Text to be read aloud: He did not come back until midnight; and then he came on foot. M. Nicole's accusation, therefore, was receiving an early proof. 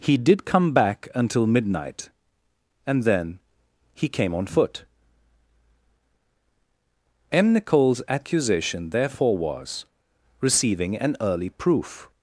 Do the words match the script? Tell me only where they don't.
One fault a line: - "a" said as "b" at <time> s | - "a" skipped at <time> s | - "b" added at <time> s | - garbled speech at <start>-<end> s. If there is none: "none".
- "not" skipped at 0.5 s